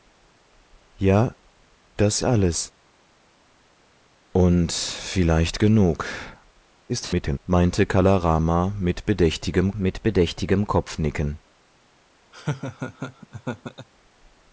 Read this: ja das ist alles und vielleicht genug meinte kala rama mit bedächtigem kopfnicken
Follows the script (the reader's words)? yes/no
no